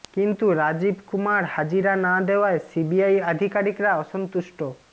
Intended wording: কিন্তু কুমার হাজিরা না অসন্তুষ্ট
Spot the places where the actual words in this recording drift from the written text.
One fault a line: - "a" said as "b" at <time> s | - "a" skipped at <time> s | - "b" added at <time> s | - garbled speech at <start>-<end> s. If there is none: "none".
- "রাজীব" added at 0.6 s
- "দেওয়ায় সিবিআই আধিকারিকরা" added at 2.3 s